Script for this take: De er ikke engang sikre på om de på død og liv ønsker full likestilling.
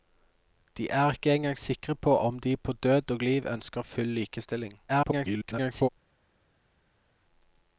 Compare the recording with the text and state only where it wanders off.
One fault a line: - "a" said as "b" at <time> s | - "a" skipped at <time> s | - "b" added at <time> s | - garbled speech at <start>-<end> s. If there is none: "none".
- garbled speech at 4.9-5.9 s